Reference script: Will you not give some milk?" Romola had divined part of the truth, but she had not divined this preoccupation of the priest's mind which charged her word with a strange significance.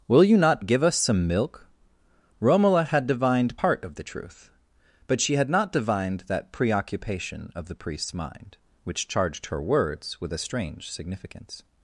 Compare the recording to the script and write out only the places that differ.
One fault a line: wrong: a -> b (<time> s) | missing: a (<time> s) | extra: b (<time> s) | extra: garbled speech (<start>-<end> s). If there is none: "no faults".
extra: us (0.8 s)
wrong: this -> that (6.3 s)
wrong: word -> words (9.6 s)